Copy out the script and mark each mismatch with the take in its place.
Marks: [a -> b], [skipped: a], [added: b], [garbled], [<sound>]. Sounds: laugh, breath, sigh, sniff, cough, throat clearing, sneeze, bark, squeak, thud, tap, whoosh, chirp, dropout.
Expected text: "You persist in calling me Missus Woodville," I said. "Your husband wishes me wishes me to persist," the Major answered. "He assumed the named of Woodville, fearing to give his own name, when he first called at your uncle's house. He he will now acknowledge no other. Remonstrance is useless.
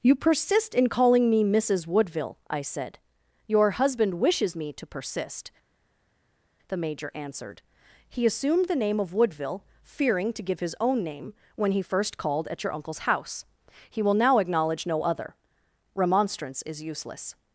"You persist in calling me Missus Woodville," I said. "Your husband wishes me [skipped: wishes me] to persist," the Major answered. "He assumed the [named -> name] of Woodville, fearing to give his own name, when he first called at your uncle's house. He [skipped: he] will now acknowledge no other. Remonstrance is useless.